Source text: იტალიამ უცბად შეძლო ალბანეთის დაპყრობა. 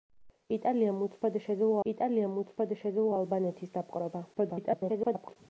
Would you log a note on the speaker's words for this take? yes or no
yes